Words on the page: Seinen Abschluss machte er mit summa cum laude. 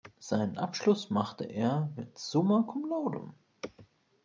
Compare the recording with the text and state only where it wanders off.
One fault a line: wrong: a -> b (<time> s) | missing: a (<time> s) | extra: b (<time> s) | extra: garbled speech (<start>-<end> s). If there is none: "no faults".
no faults